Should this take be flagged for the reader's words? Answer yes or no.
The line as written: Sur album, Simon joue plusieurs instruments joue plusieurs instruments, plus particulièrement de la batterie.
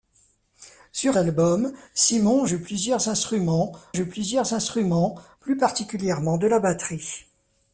no